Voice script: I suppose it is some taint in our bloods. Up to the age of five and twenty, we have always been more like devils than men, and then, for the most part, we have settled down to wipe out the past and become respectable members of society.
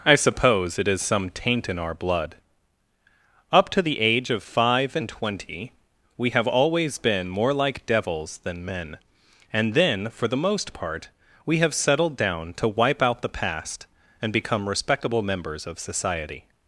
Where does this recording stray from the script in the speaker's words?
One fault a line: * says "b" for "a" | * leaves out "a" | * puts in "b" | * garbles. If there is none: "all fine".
* says "blood" for "bloods"